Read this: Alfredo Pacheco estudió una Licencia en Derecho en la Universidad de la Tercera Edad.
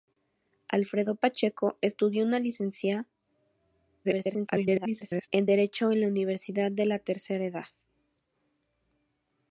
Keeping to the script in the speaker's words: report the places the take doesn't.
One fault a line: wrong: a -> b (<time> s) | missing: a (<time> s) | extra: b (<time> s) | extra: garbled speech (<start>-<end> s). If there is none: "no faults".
extra: garbled speech (4.0-5.3 s)